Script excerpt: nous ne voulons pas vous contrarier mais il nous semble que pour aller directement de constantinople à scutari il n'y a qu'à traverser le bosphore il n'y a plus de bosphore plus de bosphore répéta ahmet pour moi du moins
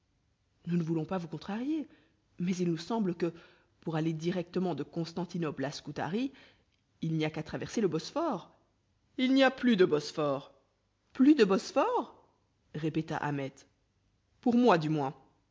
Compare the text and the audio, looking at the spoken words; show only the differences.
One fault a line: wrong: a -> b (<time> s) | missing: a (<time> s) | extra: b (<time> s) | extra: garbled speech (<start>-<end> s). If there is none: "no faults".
no faults